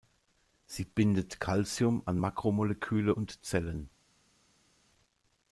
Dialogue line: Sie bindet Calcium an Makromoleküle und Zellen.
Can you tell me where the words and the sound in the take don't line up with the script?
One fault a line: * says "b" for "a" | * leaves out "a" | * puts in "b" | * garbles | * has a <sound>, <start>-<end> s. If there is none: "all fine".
all fine